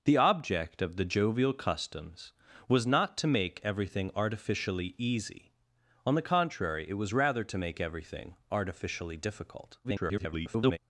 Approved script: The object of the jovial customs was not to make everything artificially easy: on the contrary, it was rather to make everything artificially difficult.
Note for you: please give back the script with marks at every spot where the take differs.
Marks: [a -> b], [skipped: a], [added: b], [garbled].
The object of the jovial customs was not to make everything artificially easy: on the contrary, it was rather to make everything artificially difficult. [garbled]